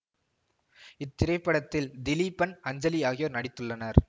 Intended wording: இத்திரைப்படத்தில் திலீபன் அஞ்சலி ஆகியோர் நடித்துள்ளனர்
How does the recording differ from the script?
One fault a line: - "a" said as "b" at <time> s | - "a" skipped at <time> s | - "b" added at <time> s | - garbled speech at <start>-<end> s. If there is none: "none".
none